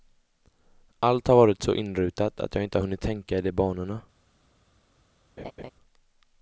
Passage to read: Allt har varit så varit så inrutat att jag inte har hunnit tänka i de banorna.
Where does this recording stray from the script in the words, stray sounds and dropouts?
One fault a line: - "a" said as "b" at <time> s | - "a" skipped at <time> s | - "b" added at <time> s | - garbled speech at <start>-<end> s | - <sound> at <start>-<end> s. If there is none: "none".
- "varit så" skipped at 1.8 s
- laugh at 5.4-5.7 s